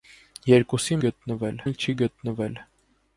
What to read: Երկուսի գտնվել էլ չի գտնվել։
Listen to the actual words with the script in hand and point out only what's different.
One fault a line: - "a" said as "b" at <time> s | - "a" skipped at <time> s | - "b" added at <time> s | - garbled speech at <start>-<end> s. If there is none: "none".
none